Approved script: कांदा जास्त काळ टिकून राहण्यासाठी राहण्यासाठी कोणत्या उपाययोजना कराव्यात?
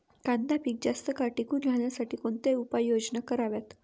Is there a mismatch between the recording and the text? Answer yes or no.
yes